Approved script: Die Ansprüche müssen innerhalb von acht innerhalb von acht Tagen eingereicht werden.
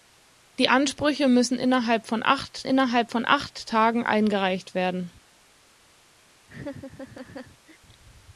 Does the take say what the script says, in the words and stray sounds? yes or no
no